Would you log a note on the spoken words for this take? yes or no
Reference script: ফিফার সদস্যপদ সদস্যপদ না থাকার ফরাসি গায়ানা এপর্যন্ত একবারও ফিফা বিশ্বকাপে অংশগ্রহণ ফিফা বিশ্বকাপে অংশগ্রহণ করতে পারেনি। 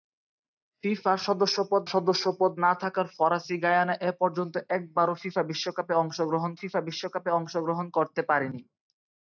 no